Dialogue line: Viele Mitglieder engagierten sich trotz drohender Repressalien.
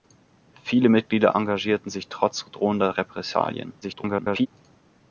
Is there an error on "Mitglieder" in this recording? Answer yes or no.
no